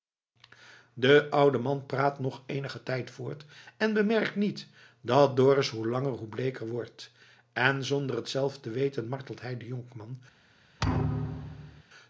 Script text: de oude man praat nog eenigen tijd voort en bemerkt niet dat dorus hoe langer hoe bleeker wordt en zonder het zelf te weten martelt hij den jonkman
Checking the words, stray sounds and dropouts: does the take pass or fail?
fail